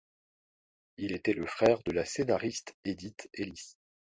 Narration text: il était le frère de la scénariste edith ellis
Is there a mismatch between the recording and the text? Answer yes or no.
no